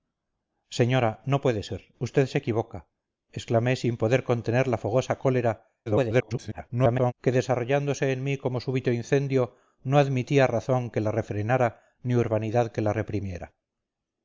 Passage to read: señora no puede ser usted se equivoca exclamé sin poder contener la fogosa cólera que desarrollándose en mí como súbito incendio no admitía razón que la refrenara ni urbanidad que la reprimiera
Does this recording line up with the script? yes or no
no